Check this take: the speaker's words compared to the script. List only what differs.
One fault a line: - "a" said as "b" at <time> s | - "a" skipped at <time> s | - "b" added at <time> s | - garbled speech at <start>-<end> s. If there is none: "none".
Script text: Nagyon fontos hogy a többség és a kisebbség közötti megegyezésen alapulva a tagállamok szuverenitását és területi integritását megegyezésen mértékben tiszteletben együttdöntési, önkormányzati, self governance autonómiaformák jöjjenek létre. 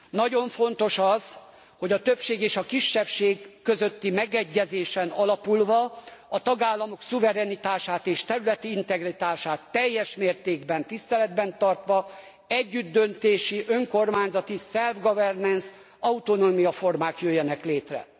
- "az" added at 1.0 s
- "megegyezésen" said as "teljes" at 9.7 s
- "tartva" added at 11.6 s